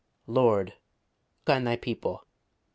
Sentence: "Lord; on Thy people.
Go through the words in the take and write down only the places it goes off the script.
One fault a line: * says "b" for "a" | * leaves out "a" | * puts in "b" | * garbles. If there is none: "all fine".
all fine